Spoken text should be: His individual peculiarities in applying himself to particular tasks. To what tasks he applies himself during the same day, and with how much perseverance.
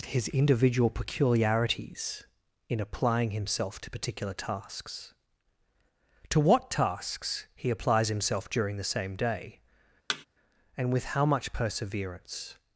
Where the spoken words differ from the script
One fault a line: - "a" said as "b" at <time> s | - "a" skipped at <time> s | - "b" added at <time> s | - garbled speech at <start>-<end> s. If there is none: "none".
none